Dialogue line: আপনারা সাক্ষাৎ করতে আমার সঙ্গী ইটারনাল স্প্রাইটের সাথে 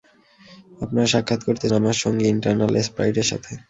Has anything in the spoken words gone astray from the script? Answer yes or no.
no